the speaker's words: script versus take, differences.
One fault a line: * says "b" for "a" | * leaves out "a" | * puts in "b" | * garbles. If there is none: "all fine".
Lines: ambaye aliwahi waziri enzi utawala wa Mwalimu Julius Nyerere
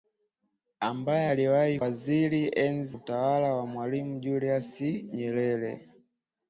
all fine